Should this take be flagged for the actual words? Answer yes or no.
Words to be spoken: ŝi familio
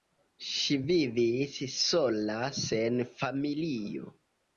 yes